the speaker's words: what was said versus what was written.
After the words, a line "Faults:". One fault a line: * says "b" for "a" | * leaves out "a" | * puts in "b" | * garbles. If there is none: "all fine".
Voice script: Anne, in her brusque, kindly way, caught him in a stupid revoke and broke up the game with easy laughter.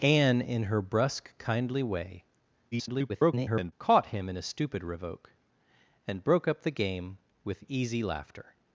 Anne, in her brusque, kindly way, [garbled] caught him in a stupid revoke and broke up the game with easy laughter.
Faults:
* garbles